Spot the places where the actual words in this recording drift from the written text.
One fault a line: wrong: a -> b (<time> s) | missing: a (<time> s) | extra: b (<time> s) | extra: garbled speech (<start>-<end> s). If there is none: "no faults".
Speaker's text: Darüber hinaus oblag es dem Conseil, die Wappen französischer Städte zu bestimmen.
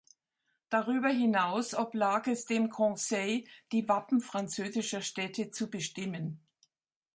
no faults